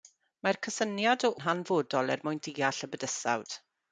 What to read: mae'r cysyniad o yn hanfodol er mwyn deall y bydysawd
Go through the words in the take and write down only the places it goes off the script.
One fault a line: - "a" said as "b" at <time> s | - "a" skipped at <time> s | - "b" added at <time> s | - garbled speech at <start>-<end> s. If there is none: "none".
none